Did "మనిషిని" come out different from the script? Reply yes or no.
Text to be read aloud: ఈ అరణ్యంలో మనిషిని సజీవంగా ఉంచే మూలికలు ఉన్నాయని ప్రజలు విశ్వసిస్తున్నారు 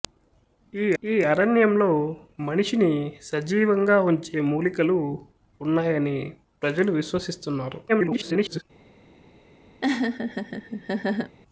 no